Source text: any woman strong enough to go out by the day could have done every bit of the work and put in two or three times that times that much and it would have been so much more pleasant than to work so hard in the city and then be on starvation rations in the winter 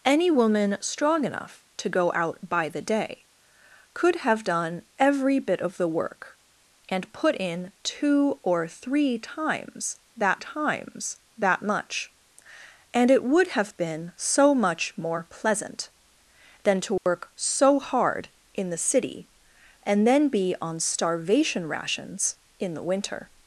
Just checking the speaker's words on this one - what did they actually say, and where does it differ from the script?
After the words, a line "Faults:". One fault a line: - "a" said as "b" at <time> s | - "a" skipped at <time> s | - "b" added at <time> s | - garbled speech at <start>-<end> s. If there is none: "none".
any woman strong enough to go out by the day could have done every bit of the work and put in two or three times that times that much and it would have been so much more pleasant than to work so hard in the city and then be on starvation rations in the winter
Faults:
none